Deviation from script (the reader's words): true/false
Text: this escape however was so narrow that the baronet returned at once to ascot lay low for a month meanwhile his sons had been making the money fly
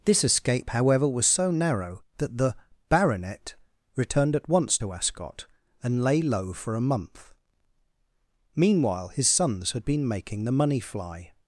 true